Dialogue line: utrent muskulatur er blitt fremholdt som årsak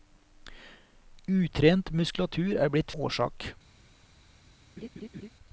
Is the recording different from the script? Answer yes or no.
yes